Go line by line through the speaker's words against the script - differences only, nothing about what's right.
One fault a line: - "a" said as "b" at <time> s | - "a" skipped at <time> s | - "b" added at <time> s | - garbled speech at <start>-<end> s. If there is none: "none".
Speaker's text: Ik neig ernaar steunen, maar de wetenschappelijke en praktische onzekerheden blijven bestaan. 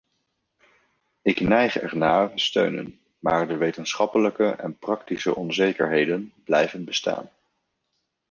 none